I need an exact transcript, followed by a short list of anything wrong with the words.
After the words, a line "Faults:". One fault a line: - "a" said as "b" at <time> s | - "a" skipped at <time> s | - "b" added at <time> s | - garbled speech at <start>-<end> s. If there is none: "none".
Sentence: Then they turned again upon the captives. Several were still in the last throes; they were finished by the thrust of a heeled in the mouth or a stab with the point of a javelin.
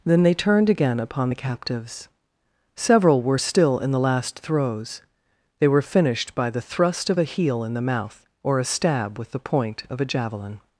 Then they turned again upon the captives. Several were still in the last throes; they were finished by the thrust of a heel in the mouth or a stab with the point of a javelin.
Faults:
- "heeled" said as "heel" at 7.2 s